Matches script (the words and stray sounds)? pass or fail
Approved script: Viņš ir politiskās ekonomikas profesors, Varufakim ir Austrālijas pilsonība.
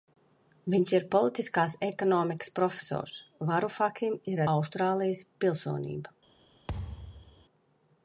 fail